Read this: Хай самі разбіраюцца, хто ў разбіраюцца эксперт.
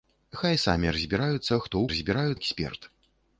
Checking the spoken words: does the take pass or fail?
pass